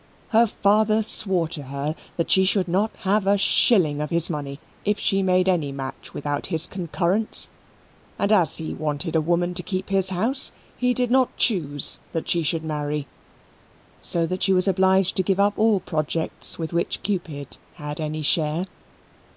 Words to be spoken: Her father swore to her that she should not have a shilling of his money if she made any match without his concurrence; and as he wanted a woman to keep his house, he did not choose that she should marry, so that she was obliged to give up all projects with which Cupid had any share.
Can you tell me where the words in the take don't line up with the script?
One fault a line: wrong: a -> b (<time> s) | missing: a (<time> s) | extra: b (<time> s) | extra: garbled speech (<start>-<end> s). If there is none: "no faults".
no faults